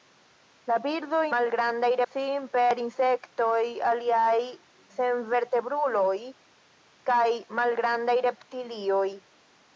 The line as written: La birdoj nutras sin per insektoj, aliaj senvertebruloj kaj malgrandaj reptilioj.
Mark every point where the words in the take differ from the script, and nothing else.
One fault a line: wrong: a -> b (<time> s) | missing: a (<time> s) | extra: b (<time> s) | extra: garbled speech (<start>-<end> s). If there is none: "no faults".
wrong: nutras -> malgrandaj (1.4 s)